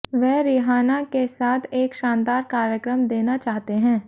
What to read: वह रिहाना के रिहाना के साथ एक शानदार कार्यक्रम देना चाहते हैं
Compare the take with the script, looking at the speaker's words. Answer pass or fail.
fail